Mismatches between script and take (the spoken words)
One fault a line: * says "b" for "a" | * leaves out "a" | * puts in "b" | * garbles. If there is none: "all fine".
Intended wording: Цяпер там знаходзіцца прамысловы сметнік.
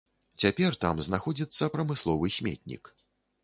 all fine